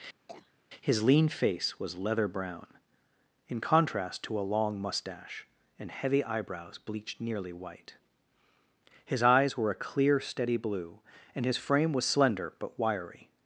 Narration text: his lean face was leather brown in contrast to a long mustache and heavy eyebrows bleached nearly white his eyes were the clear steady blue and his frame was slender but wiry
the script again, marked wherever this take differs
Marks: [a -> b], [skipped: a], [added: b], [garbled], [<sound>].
[cough] his lean face was leather brown in contrast to a long mustache and heavy eyebrows bleached nearly white his eyes were [the -> a] clear steady blue and his frame was slender but wiry